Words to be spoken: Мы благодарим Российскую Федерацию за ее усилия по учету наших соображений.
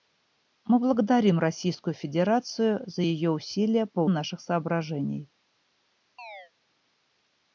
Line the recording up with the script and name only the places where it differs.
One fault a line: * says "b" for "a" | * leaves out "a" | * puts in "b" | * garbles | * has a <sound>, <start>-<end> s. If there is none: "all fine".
* leaves out "учету"
* has a chirp, 6.2-6.5 s